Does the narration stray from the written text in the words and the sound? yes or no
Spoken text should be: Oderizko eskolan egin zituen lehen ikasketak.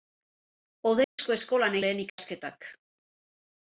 yes